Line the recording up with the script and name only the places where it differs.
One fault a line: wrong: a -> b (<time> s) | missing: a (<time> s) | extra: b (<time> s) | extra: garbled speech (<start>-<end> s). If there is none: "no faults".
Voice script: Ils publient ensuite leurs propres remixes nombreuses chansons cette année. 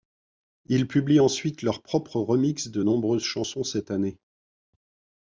extra: de (2.7 s)